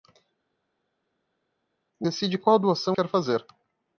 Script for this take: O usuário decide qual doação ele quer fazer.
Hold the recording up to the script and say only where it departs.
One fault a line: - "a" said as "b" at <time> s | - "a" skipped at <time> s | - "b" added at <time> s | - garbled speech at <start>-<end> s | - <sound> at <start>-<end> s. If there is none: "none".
- "usuário" skipped at 2.1 s
- "ele" skipped at 3.0 s